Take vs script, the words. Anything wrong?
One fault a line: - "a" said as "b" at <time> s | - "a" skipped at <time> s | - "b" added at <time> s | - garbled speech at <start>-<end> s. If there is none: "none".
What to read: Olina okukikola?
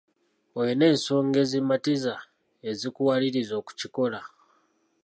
- "ensonga ezimatiza ezikuwaliriza" added at 0.9 s